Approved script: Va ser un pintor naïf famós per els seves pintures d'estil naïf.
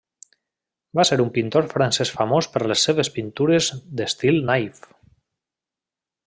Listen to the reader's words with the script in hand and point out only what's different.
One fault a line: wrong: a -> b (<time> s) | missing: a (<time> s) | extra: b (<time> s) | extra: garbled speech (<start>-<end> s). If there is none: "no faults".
wrong: naïf -> francès (1.7 s)
wrong: els -> les (2.7 s)